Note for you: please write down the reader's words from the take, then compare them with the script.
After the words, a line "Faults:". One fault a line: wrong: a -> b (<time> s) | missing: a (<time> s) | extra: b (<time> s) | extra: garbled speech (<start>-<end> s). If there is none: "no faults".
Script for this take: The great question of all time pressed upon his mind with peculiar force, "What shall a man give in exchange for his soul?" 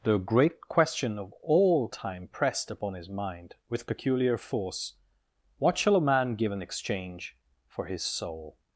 The great question of all time pressed upon his mind with peculiar force, "What shall a man give in exchange for his soul?"
Faults:
no faults